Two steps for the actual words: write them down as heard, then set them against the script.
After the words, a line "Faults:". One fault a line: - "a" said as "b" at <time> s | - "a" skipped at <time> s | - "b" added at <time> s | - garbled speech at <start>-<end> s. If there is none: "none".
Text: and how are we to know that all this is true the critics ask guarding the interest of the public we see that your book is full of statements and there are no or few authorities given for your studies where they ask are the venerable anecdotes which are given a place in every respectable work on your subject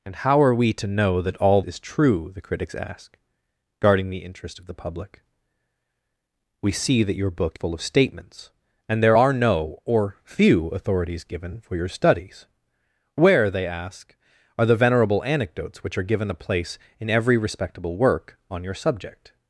and how are we to know that all is true the critics ask guarding the interest of the public we see that your book full of statements and there are no or few authorities given for your studies where they ask are the venerable anecdotes which are given a place in every respectable work on your subject
Faults:
- "this" skipped at 1.6 s
- "is" skipped at 7.6 s